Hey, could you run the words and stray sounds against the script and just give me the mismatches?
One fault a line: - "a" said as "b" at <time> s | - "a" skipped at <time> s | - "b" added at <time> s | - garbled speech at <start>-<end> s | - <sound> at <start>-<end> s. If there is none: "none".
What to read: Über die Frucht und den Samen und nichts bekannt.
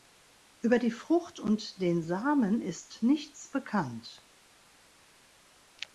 - "und" said as "ist" at 2.6 s